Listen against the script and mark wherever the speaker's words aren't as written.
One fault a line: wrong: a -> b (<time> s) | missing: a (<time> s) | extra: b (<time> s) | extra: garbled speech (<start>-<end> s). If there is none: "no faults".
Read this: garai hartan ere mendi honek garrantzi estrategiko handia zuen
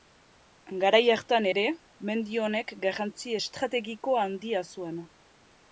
no faults